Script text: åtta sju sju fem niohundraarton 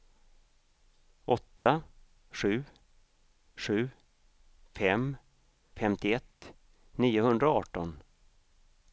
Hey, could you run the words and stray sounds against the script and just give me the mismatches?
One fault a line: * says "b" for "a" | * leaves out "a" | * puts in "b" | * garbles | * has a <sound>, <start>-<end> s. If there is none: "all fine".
* has a dropout, 1.6-1.7 s
* puts in "femtioett"